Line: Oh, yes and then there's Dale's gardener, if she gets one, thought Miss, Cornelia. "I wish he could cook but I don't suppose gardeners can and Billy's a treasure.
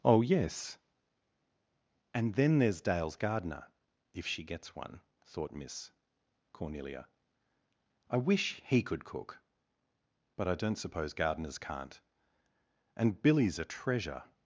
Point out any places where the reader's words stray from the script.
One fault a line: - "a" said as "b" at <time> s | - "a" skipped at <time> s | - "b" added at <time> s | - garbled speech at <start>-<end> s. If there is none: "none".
- "can" said as "can't" at 11.6 s